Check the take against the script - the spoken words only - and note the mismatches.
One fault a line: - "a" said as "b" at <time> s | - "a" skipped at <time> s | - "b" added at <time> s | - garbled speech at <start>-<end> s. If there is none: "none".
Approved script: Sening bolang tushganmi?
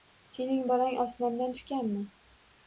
- "osmondan" added at 1.0 s